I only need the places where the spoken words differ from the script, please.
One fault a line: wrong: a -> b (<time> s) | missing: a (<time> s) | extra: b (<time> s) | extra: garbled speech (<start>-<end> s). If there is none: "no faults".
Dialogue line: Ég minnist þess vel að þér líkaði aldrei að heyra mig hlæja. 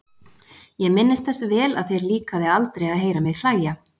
no faults